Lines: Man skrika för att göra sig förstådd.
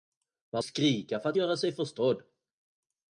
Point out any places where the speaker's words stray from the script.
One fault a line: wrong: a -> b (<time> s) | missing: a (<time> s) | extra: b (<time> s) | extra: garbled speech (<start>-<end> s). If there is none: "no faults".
no faults